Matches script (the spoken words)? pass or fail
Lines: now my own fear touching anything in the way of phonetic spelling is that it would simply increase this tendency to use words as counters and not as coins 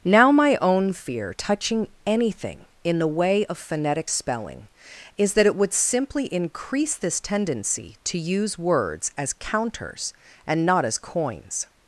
pass